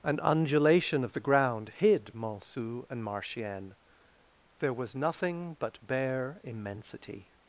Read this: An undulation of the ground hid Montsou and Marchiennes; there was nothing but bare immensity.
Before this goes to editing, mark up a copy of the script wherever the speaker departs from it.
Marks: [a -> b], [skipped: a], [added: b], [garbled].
An undulation of the ground hid Montsou and Marchiennes; there was nothing but bare immensity.